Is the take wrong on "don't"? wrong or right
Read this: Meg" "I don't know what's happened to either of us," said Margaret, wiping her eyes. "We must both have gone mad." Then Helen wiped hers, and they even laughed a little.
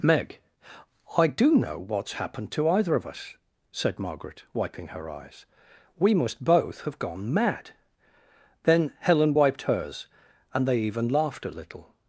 wrong